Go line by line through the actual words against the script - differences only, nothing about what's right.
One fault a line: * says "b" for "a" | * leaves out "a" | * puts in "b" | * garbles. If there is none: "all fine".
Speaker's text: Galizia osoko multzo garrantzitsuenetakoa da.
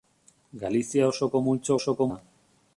* says "osoko" for "garrantzitsuenetakoa"